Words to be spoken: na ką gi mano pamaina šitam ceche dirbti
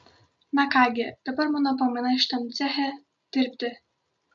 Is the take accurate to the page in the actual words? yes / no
no